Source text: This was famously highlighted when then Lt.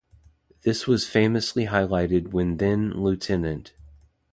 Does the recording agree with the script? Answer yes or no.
yes